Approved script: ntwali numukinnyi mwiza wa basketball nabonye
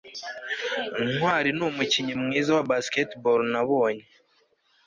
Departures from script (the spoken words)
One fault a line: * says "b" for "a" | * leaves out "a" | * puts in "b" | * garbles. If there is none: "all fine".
all fine